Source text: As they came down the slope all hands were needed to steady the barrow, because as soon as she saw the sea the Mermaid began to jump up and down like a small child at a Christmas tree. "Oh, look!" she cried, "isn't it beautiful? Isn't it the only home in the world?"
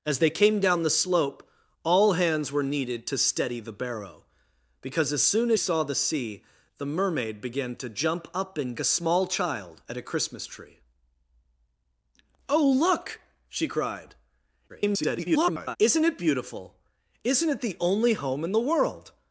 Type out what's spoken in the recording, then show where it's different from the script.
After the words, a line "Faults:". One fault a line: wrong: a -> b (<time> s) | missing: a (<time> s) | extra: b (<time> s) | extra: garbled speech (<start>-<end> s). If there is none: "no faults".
As they came down the slope all hands were needed to steady the barrow, because as soon as saw the sea the Mermaid began to jump up and a small child at a Christmas tree. "Oh, look!" she cried, [garbled] "isn't it beautiful? Isn't it the only home in the world?"
Faults:
missing: she (5.6 s)
missing: down like (8.8 s)
extra: garbled speech (14.7-15.8 s)